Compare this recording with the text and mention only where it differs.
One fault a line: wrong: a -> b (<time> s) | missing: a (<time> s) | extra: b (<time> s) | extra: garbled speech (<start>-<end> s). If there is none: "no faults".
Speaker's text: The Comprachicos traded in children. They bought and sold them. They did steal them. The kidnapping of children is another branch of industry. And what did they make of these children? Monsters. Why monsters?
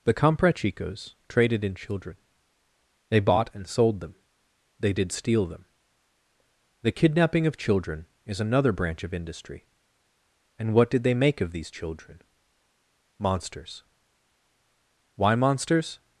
no faults